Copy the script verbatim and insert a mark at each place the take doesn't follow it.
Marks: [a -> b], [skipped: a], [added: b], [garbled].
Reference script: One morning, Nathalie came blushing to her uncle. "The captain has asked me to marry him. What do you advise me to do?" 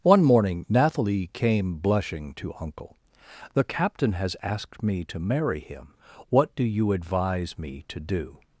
One morning, Nathalie came blushing to [skipped: her] uncle. "The captain has asked me to marry him. What do you advise me to do?"